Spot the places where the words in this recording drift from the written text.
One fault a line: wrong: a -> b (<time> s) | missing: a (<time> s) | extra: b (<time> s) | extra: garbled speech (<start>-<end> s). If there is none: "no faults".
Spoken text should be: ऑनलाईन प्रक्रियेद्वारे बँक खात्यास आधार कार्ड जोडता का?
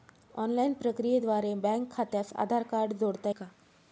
no faults